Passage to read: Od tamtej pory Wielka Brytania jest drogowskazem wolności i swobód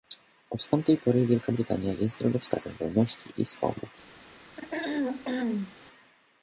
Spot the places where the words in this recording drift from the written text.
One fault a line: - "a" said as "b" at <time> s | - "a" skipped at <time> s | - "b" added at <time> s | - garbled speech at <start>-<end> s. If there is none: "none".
none